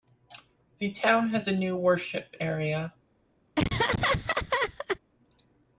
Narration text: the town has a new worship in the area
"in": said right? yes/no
no